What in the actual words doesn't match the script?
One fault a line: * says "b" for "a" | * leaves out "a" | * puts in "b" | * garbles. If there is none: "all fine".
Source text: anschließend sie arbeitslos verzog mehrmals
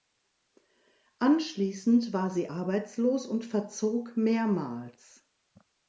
* puts in "war"
* puts in "und"